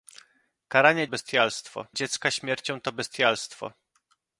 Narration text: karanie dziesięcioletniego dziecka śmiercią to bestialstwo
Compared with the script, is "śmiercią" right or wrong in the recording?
right